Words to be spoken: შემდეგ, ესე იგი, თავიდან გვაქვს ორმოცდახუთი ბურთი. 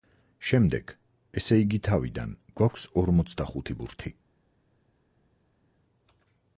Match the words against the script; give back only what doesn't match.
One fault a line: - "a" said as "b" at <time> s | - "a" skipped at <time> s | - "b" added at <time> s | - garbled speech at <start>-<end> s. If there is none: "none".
none